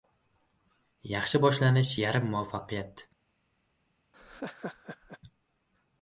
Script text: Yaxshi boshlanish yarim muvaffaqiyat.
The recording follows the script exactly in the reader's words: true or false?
true